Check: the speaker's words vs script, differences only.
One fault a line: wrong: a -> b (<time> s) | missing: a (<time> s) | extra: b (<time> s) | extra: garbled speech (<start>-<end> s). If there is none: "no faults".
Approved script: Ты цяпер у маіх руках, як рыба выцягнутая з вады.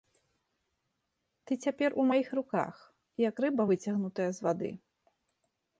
no faults